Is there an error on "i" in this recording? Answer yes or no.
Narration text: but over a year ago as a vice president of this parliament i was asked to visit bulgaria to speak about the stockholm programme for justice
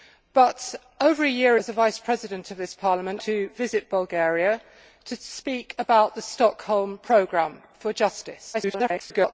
yes